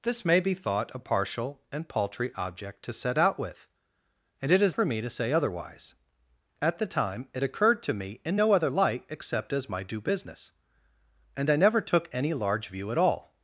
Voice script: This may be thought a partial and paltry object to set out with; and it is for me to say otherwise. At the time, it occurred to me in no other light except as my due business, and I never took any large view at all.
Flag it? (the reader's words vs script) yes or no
no